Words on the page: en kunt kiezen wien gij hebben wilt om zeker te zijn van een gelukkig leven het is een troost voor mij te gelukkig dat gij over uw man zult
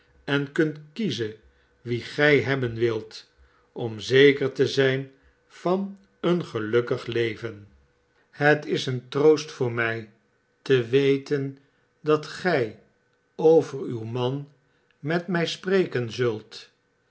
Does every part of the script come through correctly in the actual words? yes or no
no